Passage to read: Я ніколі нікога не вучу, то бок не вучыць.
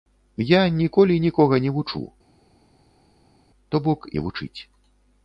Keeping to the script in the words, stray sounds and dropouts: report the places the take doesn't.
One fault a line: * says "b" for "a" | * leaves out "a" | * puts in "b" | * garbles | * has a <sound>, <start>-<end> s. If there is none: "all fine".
all fine